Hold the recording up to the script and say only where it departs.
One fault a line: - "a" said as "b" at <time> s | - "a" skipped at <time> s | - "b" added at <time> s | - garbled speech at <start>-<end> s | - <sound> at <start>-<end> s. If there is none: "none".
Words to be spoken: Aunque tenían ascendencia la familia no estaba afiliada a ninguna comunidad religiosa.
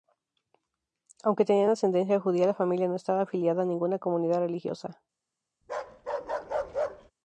- "judía" added at 2.2 s
- bark at 5.6-7.1 s